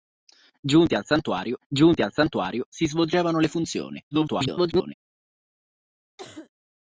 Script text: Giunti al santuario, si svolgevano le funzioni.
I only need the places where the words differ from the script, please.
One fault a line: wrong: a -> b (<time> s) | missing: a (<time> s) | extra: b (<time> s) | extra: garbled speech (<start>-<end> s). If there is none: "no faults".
extra: giunti al santuario (1.7 s)
extra: garbled speech (4.1-4.9 s)